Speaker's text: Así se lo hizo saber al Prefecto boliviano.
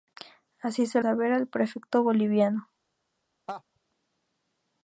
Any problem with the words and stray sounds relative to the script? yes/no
yes